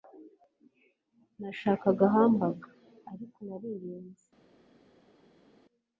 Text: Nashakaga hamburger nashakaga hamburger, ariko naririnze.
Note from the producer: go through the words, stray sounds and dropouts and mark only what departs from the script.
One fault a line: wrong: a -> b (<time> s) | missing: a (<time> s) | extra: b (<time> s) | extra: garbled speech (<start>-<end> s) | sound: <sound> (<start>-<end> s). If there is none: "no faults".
missing: nashakaga hamburger (2.7 s)